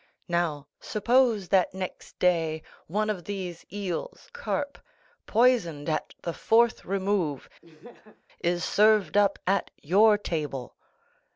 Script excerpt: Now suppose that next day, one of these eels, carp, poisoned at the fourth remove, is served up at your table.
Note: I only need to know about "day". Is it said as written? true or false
true